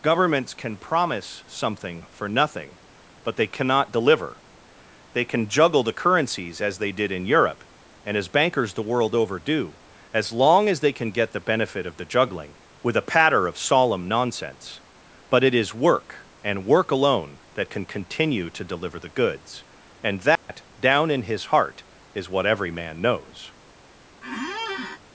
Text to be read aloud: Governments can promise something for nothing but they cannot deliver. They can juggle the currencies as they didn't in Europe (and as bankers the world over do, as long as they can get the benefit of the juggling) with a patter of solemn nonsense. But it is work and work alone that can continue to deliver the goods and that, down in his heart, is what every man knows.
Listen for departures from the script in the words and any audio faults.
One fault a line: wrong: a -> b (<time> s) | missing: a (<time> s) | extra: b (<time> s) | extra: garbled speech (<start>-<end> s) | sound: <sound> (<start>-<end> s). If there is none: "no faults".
wrong: didn't -> did (6.9 s)
sound: dropout (20.4-20.5 s)
sound: squeak (24.2-25.0 s)